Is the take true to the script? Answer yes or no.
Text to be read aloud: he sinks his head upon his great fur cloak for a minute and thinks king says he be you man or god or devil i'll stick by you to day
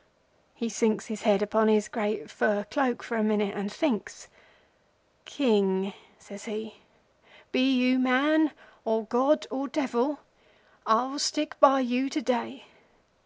yes